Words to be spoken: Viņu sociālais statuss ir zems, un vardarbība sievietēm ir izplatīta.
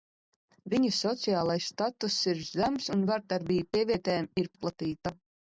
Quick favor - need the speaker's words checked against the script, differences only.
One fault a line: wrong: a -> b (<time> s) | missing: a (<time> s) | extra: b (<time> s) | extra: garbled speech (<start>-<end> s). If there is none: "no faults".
no faults